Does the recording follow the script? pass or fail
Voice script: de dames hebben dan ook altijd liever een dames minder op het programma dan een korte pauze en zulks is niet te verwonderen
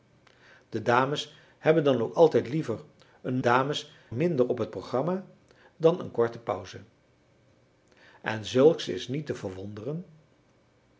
pass